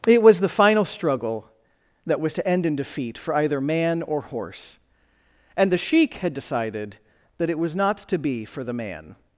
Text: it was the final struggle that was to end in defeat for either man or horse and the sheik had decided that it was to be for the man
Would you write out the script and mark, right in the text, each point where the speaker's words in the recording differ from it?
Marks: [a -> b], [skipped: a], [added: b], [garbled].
it was the final struggle that was to end in defeat for either man or horse and the sheik had decided that it was [added: not] to be for the man